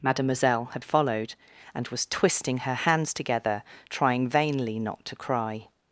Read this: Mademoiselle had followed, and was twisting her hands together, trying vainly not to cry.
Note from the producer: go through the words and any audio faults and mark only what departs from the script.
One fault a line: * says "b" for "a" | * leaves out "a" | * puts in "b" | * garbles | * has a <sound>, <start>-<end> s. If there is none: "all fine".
all fine